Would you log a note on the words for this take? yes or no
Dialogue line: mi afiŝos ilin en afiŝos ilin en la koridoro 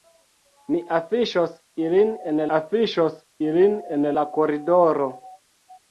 no